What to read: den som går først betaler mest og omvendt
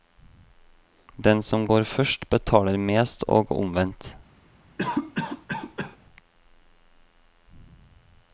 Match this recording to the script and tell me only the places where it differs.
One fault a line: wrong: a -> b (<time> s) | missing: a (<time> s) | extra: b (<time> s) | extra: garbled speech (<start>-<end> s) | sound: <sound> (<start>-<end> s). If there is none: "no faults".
sound: cough (4.8-6.0 s)